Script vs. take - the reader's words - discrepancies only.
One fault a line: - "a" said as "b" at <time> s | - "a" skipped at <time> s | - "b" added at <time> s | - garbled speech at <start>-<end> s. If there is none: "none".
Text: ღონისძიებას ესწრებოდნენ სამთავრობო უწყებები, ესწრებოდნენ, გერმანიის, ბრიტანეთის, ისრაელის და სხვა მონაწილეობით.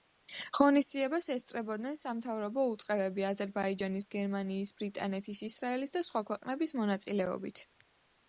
- "ესწრებოდნენ" said as "აზერბაიჯანის" at 3.3 s
- "ქვეყნების" added at 6.3 s